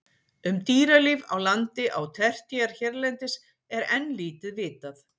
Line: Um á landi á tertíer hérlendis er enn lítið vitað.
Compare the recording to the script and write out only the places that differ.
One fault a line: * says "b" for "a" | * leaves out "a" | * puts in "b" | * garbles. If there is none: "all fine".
* puts in "dýralíf"